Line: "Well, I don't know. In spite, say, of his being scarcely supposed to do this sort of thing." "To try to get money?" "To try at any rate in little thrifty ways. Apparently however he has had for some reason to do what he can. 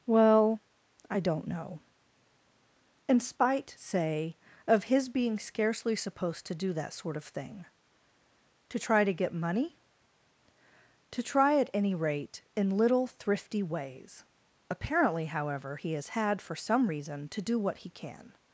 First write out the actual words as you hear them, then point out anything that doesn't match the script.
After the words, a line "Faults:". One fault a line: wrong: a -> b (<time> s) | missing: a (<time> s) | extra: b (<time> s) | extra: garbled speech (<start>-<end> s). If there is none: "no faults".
"Well, I don't know. In spite, say, of his being scarcely supposed to do that sort of thing." "To try to get money?" "To try at any rate in little thrifty ways. Apparently however he has had for some reason to do what he can.
Faults:
wrong: this -> that (6.7 s)